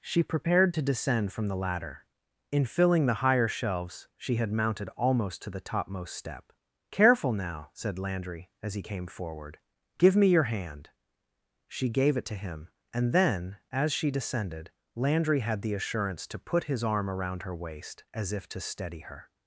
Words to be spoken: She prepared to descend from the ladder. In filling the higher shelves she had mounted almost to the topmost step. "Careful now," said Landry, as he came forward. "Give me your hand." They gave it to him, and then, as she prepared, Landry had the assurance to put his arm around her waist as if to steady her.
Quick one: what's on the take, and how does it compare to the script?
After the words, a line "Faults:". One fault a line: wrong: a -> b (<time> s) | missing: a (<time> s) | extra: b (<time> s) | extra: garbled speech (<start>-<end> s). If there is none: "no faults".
She prepared to descend from the ladder. In filling the higher shelves she had mounted almost to the topmost step. "Careful now," said Landry, as he came forward. "Give me your hand." She gave it to him, and then, as she descended, Landry had the assurance to put his arm around her waist as if to steady her.
Faults:
wrong: They -> She (11.7 s)
wrong: prepared -> descended (14.1 s)